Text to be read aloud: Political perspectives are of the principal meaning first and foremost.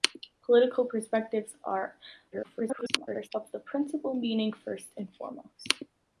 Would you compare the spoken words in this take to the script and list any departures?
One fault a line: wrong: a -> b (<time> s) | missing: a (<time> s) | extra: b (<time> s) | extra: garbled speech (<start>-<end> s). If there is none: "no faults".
extra: garbled speech (2.3-3.3 s)